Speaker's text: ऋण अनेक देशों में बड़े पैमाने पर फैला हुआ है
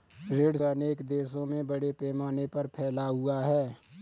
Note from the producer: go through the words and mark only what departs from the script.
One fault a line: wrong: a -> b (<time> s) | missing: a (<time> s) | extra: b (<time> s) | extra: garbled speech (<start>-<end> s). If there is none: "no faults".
no faults